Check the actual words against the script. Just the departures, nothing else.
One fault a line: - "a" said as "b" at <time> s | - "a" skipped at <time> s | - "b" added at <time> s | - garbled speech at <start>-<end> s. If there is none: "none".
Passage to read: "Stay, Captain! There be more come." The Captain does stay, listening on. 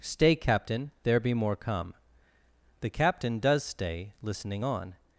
none